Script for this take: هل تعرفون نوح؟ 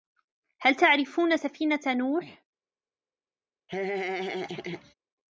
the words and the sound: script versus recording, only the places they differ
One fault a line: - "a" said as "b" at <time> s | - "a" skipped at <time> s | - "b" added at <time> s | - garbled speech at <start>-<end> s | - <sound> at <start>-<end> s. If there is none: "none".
- "سفينة" added at 1.4 s
- laugh at 3.7-4.9 s